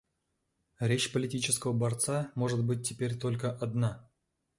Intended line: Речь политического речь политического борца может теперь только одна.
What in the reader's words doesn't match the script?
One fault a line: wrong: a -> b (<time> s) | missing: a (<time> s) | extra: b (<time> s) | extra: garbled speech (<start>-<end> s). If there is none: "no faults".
missing: речь политического (1.7 s)
extra: быть (2.6 s)